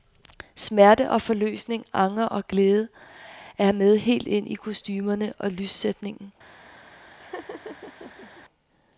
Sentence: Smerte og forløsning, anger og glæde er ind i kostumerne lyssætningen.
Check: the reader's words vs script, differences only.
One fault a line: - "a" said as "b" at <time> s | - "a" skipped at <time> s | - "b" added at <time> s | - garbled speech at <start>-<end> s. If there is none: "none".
- "med helt" added at 3.7 s
- "og" added at 5.4 s